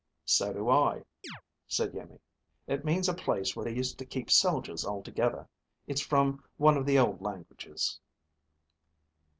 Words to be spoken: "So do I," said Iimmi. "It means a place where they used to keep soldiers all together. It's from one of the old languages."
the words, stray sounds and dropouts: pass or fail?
fail